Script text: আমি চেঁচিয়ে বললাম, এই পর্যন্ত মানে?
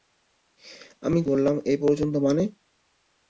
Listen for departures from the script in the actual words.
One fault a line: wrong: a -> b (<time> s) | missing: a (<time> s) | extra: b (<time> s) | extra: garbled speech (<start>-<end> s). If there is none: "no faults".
missing: চেঁচিয়ে (1.2 s)